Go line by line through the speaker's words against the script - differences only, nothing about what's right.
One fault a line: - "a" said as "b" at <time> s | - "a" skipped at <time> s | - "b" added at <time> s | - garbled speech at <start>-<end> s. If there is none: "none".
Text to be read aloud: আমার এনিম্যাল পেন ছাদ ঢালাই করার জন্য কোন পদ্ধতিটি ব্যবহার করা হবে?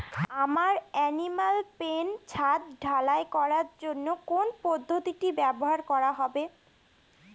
none